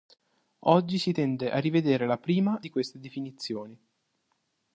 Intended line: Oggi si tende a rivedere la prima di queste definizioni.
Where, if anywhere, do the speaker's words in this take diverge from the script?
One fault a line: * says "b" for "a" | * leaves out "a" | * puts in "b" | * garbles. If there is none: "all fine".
all fine